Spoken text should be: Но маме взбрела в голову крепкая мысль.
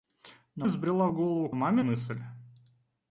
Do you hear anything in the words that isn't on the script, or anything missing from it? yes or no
yes